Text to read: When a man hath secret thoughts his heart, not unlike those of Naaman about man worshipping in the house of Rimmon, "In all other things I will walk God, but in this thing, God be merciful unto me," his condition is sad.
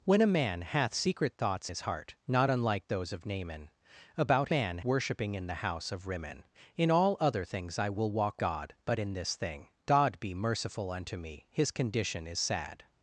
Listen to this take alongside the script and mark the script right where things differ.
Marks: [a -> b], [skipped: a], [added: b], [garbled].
When a man hath secret thoughts his heart, not unlike those of Naaman about man worshipping in the house of Rimmon, "In all other things I will walk God, but in this thing, God be merciful unto me," his condition is sad.